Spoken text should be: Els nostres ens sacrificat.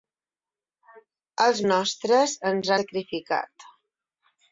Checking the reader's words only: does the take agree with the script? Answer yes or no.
yes